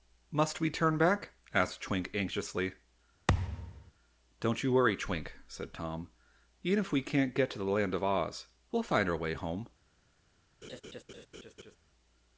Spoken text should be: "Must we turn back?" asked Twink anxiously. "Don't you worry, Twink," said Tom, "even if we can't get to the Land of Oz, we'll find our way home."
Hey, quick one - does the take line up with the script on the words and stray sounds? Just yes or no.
no